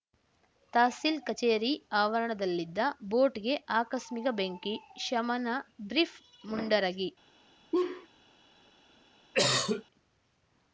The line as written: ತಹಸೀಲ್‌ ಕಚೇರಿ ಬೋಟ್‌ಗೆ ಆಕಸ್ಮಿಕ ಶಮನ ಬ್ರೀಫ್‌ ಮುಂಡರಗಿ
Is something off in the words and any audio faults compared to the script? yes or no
yes